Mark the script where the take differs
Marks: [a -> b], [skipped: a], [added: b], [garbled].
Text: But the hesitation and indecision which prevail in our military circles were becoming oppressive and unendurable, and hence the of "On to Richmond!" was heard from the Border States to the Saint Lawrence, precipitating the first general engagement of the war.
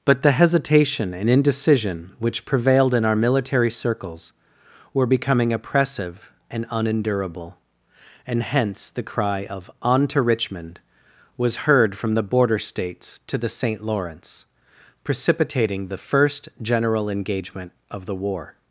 But the hesitation and indecision which [prevail -> prevailed] in our military circles were becoming oppressive and unendurable, and hence the [added: cry] of "On to Richmond!" was heard from the Border States to the Saint Lawrence, precipitating the first general engagement of the war.